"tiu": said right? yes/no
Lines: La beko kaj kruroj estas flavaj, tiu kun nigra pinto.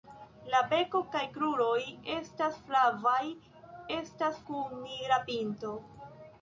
no